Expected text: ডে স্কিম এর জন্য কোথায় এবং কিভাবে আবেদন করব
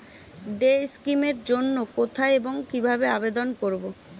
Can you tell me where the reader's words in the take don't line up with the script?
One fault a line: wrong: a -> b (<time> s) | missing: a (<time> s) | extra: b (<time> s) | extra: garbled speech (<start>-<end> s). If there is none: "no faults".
no faults